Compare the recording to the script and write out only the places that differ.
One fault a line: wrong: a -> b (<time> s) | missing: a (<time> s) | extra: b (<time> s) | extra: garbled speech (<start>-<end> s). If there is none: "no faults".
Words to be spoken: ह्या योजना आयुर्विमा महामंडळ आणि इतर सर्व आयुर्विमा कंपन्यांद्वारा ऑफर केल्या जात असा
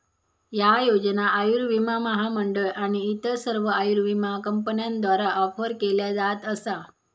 no faults